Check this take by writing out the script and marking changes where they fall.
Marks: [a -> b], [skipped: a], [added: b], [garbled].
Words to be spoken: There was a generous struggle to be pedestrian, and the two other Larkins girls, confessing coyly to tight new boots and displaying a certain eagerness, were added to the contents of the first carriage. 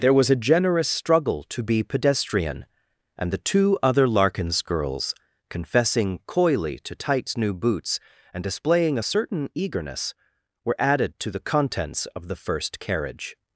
There was a generous struggle to be pedestrian, and the two other Larkins girls, confessing coyly to [tight -> tights] new boots and displaying a certain eagerness, were added to the contents of the first carriage.